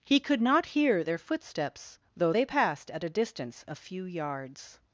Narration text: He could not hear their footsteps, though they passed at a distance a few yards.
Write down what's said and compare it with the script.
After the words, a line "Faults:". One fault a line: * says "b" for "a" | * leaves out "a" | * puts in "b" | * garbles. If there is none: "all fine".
He could not hear their footsteps, though they passed at a distance a few yards.
Faults:
all fine